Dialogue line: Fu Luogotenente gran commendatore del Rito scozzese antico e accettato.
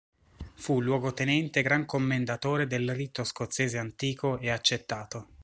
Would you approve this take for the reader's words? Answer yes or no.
yes